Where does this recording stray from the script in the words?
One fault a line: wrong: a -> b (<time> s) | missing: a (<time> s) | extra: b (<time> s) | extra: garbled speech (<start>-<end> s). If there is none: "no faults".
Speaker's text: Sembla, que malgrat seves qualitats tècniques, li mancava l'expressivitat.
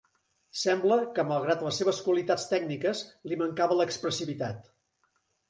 extra: les (1.6 s)